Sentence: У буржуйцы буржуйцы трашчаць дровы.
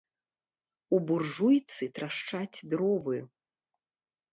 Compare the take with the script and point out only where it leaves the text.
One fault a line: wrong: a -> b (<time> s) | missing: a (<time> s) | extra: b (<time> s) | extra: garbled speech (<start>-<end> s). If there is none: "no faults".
missing: буржуйцы (1.8 s)